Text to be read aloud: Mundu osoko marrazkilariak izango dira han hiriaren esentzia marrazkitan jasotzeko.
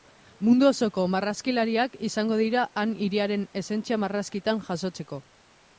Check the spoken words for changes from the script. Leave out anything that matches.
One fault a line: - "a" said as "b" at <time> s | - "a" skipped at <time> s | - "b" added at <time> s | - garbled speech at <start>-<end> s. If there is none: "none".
none